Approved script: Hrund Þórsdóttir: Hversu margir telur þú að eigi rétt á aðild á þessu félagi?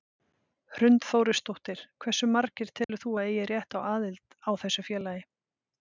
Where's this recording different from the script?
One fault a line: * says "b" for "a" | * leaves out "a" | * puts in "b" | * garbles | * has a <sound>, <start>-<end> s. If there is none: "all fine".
* has a dropout, 2.8-2.9 s